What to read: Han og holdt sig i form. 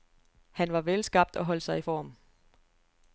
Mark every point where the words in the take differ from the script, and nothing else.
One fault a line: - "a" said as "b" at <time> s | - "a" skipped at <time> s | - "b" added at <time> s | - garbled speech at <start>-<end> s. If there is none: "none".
- "var velskabt" added at 0.7 s